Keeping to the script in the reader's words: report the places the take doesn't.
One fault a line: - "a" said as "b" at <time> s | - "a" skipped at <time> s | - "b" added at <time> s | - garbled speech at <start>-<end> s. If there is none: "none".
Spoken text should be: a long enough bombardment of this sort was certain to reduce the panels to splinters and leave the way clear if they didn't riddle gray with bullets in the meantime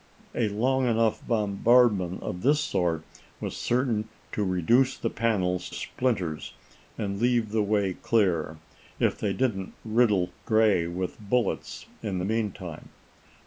- "to" skipped at 5.7 s